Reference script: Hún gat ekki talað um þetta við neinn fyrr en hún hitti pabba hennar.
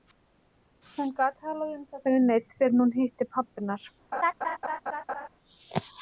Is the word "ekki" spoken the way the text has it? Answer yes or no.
no